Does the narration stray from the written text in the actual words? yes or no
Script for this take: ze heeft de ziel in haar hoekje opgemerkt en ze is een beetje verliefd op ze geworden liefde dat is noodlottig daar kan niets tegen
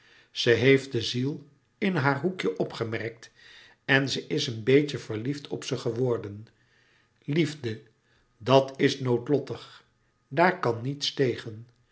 no